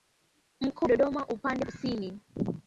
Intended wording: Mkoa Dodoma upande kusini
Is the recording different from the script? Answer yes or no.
no